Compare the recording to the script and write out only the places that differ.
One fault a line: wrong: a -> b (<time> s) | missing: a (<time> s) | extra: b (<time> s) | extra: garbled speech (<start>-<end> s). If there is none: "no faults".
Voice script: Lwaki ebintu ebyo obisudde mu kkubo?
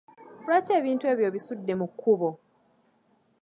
no faults